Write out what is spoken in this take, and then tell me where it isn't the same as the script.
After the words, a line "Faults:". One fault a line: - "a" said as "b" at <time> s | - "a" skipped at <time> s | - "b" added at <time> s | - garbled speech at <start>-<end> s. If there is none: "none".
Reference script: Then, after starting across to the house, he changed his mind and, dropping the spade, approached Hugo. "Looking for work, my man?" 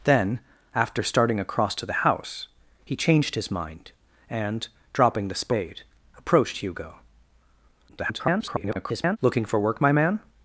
Then, after starting across to the house, he changed his mind and, dropping the spade, approached Hugo. [garbled] "Looking for work, my man?"
Faults:
- garbled speech at 7.9-9.2 s